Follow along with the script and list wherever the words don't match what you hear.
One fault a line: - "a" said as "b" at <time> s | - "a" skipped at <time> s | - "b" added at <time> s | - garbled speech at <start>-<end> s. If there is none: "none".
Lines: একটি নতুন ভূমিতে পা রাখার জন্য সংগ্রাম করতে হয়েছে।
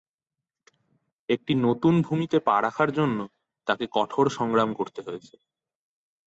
- "তাকে কঠোর" added at 3.7 s